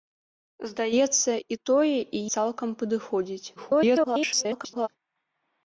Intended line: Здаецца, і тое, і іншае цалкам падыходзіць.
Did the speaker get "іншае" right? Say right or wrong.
wrong